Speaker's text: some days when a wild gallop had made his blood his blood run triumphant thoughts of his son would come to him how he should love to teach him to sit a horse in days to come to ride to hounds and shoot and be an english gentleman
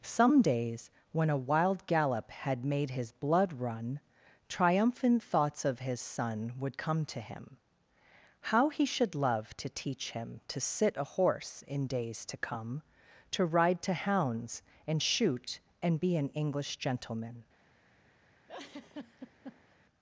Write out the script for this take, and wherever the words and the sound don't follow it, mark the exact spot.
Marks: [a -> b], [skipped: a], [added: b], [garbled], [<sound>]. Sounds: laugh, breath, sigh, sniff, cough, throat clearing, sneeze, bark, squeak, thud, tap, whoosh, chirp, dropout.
some days when a wild gallop had made his blood [skipped: his blood] run triumphant thoughts of his son would come to him how he should love to teach him to sit a horse in days to come to ride to hounds and shoot and be an english gentleman [laugh]